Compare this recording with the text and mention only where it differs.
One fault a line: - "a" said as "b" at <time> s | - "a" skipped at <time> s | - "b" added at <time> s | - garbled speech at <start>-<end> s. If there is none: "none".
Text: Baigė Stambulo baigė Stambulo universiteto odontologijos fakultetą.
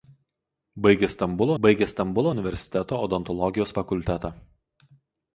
none